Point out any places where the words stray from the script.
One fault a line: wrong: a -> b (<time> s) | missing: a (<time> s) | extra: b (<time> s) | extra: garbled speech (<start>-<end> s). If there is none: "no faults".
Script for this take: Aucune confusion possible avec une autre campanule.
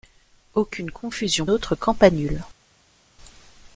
missing: possible avec une (1.4 s)